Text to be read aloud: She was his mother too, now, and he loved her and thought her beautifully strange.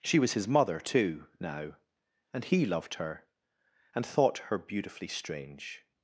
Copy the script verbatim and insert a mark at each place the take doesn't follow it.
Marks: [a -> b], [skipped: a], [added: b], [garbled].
She was his mother too, now, and he loved her and thought her beautifully strange.